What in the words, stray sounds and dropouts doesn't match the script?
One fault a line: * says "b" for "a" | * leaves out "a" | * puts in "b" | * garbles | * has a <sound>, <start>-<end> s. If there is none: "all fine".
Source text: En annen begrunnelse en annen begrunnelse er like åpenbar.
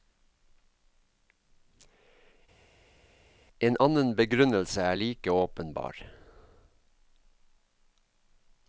* leaves out "en annen begrunnelse"